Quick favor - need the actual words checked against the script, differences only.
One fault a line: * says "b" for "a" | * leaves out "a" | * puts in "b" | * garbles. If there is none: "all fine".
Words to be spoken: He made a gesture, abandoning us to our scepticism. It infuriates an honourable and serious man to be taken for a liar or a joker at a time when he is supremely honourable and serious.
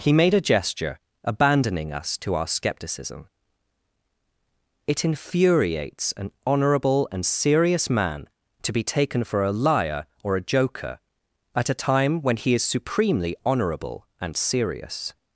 all fine